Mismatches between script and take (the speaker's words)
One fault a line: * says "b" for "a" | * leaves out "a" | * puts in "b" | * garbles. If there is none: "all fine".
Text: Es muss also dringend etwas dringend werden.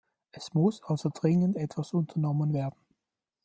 * says "unternommen" for "dringend"